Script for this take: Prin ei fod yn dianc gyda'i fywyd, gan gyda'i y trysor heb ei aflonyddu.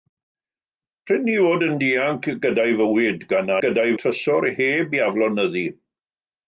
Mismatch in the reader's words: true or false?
false